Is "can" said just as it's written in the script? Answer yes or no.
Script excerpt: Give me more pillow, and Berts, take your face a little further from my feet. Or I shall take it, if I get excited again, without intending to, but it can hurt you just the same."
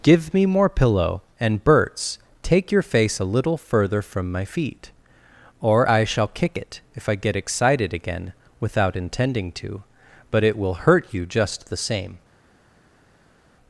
no